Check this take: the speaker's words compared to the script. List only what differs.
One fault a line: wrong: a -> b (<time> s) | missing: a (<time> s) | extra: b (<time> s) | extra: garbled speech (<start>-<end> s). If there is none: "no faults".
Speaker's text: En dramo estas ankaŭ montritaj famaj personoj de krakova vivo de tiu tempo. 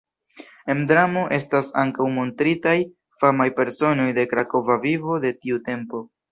no faults